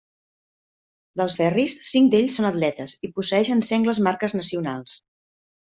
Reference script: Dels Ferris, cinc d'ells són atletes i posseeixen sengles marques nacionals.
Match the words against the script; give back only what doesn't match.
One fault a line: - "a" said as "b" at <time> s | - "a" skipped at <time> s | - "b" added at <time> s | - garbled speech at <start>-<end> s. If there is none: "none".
none